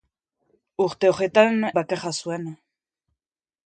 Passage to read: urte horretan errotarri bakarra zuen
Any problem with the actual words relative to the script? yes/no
yes